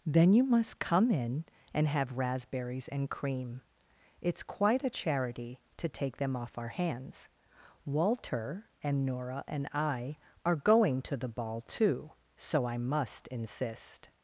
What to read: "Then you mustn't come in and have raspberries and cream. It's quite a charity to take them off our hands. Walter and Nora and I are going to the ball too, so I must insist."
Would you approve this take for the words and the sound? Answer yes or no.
no